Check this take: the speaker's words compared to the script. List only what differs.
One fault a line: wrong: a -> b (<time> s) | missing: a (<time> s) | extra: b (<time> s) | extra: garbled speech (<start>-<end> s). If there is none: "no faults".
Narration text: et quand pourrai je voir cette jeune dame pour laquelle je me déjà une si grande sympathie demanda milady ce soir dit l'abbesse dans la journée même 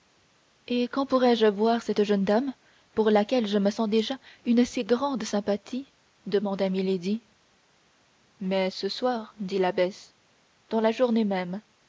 extra: sens (3.7 s)
extra: mais (8.4 s)